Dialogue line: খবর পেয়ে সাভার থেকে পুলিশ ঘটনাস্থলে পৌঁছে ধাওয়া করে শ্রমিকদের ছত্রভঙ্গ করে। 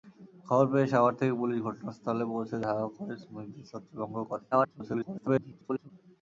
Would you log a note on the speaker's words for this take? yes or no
yes